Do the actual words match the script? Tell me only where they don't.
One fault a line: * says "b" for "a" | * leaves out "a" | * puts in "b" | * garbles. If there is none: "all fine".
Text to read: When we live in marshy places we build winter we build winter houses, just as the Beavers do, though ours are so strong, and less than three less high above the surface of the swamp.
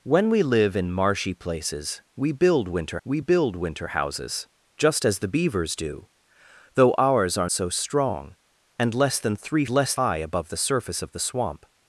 all fine